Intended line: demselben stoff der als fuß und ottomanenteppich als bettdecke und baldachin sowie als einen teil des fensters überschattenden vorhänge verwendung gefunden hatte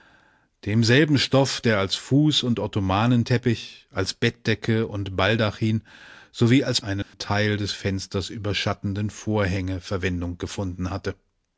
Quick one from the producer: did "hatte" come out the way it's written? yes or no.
yes